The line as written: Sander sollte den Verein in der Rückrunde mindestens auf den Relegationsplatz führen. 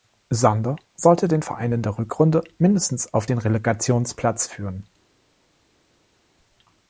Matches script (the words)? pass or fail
pass